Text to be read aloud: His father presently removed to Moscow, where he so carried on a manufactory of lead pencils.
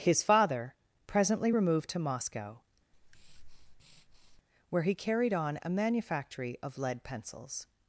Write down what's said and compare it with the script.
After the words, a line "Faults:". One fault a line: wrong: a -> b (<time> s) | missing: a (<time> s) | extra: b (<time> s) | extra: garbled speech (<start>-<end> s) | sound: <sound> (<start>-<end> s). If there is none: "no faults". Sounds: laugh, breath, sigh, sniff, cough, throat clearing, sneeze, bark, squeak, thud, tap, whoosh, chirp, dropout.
His father presently removed to Moscow, where he carried on a manufactory of lead pencils.
Faults:
sound: breath (2.9-4.4 s)
missing: so (4.9 s)